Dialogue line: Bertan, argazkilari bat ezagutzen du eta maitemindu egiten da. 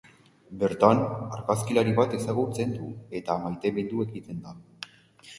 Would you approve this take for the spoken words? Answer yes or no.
yes